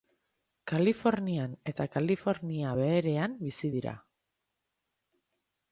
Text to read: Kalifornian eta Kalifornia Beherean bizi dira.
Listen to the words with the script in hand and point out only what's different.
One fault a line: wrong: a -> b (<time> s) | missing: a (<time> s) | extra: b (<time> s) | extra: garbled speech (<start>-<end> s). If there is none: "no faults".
no faults